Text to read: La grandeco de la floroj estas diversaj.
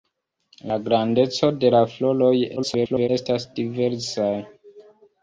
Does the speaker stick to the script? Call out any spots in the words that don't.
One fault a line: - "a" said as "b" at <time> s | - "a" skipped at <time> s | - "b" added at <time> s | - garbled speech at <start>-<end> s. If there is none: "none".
- garbled speech at 2.6-3.1 s